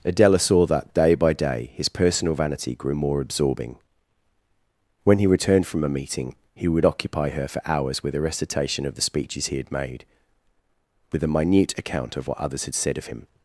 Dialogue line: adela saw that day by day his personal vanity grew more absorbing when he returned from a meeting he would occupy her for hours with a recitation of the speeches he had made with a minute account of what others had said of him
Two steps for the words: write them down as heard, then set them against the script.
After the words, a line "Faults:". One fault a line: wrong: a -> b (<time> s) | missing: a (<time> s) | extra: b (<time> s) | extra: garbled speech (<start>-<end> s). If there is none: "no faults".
adela saw that day by day his personal vanity grew more absorbing when he returned from a meeting he would occupy her for hours with a recitation of the speeches he had made with a minute account of what others had said of him
Faults:
no faults